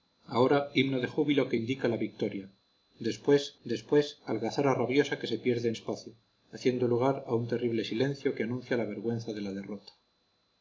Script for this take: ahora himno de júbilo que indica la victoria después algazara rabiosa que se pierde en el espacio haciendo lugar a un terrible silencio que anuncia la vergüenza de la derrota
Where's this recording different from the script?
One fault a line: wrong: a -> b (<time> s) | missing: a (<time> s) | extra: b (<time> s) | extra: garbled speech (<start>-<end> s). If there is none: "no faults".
extra: después (3.6 s)
missing: el (5.8 s)